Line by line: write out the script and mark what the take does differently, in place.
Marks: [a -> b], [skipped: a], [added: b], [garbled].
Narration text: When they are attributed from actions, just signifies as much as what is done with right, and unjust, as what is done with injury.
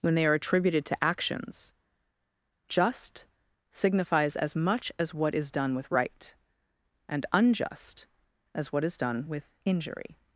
When they are attributed [from -> to] actions, just signifies as much as what is done with right, and unjust, as what is done with injury.